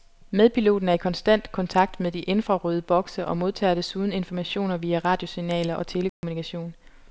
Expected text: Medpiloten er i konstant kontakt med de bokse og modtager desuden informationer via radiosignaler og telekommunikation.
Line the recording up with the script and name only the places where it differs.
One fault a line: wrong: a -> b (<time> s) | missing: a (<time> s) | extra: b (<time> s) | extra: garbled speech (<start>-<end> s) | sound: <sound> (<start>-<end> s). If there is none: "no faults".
extra: infrarøde (2.2 s)
sound: dropout (6.1-6.2 s)